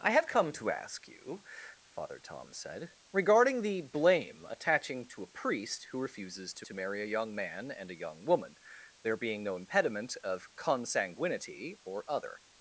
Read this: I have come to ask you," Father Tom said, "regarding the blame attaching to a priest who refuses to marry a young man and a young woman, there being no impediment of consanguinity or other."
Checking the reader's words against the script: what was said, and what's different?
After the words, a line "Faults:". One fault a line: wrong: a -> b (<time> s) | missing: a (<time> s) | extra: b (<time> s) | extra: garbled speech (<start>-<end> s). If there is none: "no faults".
I have come to ask you," Father Tom said, "regarding the blame attaching to a priest who refuses to to marry a young man and a young woman, there being no impediment of consanguinity or other."
Faults:
extra: to (6.6 s)